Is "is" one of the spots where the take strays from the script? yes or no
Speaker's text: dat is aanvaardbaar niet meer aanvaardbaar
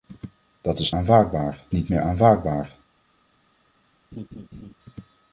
no